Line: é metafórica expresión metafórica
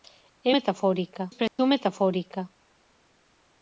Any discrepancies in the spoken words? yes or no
no